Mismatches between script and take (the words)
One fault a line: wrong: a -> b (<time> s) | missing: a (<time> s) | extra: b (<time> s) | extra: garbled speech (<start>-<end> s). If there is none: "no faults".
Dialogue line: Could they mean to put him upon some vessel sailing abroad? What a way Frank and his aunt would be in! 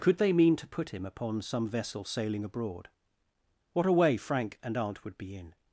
missing: his (4.8 s)